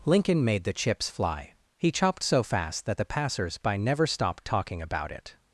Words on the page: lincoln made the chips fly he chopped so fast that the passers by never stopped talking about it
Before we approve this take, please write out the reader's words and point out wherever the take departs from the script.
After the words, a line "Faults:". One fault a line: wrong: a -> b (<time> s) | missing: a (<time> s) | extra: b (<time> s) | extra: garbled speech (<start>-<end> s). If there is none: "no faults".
lincoln made the chips fly he chopped so fast that the passers by never stopped talking about it
Faults:
no faults